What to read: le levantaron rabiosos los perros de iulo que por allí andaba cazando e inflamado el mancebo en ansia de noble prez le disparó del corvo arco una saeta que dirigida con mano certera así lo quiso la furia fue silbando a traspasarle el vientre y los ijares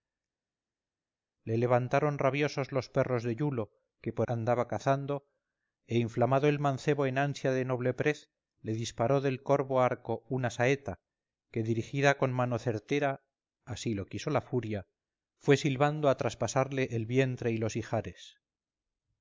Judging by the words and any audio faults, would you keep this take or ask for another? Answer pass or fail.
fail